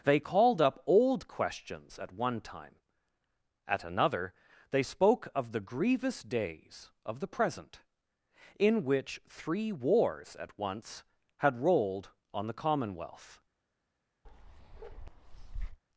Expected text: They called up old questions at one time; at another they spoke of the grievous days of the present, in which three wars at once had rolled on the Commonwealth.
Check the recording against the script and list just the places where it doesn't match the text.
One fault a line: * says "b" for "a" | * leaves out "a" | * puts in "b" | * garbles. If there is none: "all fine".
all fine